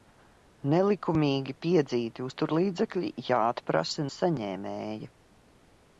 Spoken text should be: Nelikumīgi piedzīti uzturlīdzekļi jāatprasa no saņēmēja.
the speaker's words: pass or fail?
fail